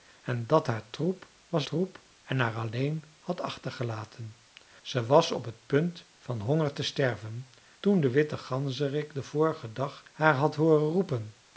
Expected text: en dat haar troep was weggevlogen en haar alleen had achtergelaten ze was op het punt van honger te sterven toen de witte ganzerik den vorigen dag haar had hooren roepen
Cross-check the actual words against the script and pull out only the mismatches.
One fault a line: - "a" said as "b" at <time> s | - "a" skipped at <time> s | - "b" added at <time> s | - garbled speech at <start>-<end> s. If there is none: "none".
- "weggevlogen" said as "troep" at 1.6 s